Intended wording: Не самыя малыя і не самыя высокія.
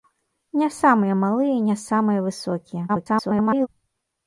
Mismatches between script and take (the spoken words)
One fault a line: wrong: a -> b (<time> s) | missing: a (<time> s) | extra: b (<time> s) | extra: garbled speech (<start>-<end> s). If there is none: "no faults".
extra: garbled speech (2.9-3.7 s)